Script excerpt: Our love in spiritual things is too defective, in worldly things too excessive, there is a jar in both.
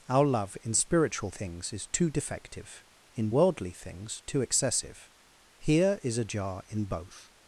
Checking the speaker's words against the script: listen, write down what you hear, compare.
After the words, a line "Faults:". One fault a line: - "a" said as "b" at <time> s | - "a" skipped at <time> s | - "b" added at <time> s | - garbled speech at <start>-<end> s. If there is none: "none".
Our love in spiritual things is too defective, in worldly things too excessive, here is a jar in both.
Faults:
- "there" said as "here" at 5.6 s